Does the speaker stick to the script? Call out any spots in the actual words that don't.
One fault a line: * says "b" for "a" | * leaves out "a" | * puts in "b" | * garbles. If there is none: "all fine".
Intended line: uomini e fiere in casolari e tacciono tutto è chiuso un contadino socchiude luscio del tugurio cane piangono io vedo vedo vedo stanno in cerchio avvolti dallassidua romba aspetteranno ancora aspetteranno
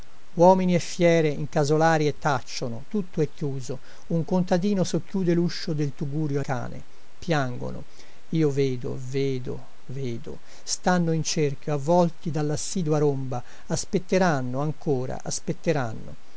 all fine